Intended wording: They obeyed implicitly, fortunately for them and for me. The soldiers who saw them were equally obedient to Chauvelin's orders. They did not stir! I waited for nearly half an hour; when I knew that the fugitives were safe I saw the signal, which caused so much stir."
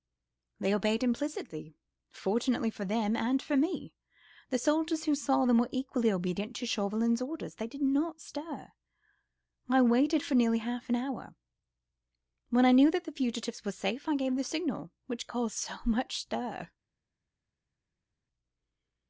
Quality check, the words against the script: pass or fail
fail